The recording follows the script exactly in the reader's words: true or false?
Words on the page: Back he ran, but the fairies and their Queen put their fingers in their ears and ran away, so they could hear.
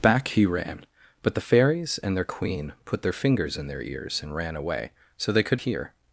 true